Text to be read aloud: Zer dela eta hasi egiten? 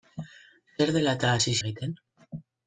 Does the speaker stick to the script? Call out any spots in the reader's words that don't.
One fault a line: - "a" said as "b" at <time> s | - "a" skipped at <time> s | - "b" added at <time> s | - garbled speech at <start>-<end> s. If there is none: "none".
none